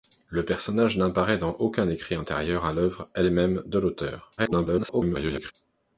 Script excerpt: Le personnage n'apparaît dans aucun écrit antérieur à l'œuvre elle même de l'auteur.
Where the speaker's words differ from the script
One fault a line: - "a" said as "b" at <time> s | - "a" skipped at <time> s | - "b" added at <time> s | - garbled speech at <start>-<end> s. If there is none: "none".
- garbled speech at 4.4-5.5 s